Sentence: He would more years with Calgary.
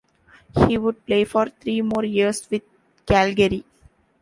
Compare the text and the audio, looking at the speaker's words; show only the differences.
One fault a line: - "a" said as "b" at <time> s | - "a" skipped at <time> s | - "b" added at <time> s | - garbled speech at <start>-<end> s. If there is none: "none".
- "play for three" added at 1.1 s